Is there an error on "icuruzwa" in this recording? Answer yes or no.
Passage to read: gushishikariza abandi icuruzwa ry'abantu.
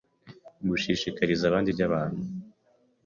yes